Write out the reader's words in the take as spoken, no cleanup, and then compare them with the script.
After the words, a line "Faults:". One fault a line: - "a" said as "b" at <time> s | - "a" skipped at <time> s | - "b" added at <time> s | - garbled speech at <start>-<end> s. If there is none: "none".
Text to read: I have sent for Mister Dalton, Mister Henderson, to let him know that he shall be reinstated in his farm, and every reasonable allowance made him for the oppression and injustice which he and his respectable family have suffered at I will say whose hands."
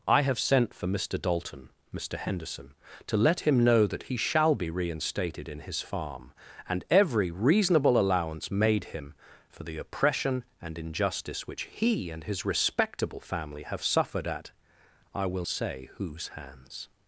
I have sent for Mister Dalton, Mister Henderson, to let him know that he shall be reinstated in his farm, and every reasonable allowance made him for the oppression and injustice which he and his respectable family have suffered at I will say whose hands."
Faults:
none